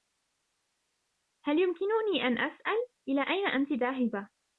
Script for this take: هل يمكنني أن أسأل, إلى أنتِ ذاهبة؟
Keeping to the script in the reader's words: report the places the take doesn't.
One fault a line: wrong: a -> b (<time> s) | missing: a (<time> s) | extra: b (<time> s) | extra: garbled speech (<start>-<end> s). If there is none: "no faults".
extra: أين (3.2 s)